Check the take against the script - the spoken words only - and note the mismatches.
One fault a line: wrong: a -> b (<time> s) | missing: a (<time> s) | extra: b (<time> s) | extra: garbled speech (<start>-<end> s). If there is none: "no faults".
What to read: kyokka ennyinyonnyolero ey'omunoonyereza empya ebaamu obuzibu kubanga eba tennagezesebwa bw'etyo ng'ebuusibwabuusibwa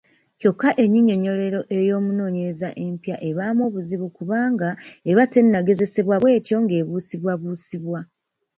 no faults